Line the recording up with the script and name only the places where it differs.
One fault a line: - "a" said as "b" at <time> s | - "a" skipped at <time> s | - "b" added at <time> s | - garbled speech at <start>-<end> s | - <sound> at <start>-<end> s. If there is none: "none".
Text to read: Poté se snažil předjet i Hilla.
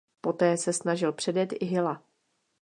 none